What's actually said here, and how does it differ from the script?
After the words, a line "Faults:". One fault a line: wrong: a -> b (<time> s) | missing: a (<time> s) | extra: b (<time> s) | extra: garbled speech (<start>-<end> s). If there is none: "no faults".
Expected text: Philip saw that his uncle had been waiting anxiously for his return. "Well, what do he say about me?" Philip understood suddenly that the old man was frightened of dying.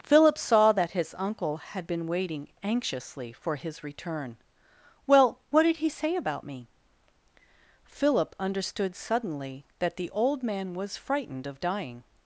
Philip saw that his uncle had been waiting anxiously for his return. "Well, what did he say about me?" Philip understood suddenly that the old man was frightened of dying.
Faults:
wrong: do -> did (5.6 s)